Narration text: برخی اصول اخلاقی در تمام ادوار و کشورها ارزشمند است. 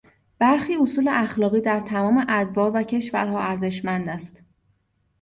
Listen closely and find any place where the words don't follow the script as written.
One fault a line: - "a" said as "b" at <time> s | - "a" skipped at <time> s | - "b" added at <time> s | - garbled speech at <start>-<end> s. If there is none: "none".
none